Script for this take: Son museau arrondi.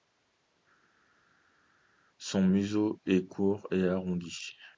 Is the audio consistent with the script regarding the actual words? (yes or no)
no